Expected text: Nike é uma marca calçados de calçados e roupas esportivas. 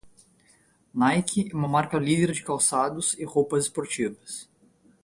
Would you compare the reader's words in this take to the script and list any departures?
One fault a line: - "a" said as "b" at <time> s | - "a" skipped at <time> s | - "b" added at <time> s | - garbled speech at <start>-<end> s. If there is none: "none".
- "calçados" said as "líder" at 2.0 s